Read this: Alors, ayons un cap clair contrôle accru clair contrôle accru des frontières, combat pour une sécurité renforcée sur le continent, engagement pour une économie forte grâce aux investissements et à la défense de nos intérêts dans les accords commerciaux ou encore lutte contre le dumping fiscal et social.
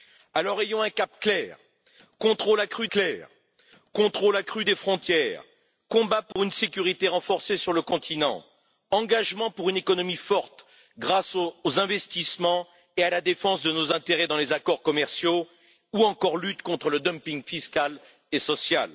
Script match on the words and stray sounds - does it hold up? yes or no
no